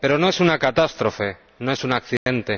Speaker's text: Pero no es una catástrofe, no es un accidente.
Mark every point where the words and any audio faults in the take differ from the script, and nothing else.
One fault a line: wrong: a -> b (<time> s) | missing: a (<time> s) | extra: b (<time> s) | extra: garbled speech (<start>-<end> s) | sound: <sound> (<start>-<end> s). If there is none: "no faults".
sound: dropout (2.2-2.3 s)